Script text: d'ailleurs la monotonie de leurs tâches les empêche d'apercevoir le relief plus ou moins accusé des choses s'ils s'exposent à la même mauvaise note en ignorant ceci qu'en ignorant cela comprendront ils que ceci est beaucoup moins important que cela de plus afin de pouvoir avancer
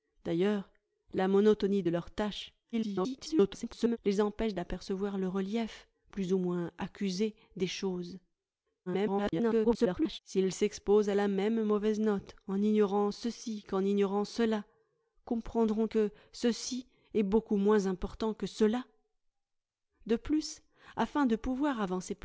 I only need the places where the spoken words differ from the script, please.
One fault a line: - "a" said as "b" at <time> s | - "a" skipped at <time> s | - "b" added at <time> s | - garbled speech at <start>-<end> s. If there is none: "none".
- garbled speech at 2.7-4.0 s
- garbled speech at 8.9-10.2 s
- "ils" skipped at 15.9 s